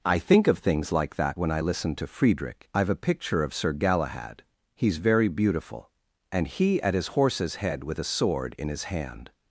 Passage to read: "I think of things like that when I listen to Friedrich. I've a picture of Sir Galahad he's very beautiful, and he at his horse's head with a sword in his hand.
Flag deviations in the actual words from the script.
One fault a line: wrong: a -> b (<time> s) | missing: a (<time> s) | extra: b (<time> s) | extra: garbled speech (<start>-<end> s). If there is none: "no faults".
no faults